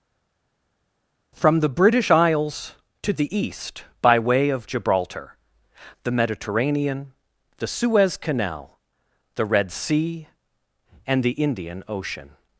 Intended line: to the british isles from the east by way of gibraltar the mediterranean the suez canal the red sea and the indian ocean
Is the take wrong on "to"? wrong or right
wrong